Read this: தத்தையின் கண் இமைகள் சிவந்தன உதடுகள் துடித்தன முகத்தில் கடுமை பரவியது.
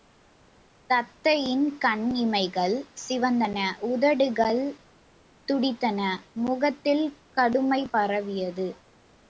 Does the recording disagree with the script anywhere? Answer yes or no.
no